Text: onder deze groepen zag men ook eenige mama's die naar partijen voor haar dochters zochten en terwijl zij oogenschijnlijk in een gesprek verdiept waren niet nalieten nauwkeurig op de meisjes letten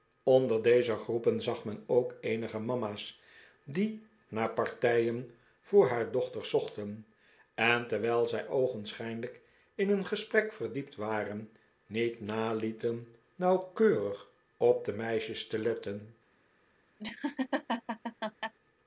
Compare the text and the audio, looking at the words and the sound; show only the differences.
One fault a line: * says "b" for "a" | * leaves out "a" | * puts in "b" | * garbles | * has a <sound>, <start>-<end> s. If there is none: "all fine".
* puts in "te"
* has a laugh, 17.0-18.5 s